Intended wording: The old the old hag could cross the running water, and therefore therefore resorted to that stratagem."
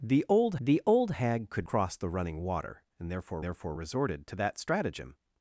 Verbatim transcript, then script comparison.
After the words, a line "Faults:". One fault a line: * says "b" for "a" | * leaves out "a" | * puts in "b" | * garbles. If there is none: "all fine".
The old the old hag could cross the running water, and therefore therefore resorted to that stratagem."
Faults:
all fine